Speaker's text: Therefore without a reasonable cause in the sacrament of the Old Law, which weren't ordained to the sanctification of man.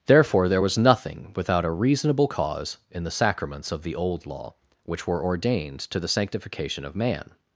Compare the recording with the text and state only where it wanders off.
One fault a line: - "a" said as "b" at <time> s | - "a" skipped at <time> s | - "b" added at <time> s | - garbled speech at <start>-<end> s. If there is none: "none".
- "there was nothing" added at 0.5 s
- "sacrament" said as "sacraments" at 3.1 s
- "weren't" said as "were" at 5.1 s